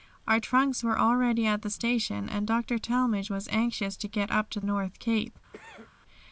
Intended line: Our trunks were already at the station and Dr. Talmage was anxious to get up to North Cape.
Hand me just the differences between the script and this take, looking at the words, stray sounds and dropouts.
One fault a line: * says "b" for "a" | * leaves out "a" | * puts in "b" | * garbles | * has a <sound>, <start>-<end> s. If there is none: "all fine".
* has a cough, 5.5-5.9 s